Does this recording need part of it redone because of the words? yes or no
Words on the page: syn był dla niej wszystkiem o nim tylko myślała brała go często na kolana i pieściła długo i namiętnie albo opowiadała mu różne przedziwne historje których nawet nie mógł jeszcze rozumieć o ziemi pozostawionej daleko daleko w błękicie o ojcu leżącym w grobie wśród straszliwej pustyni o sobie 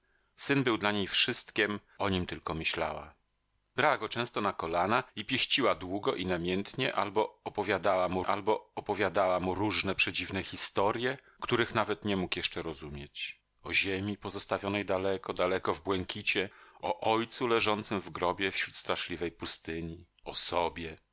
yes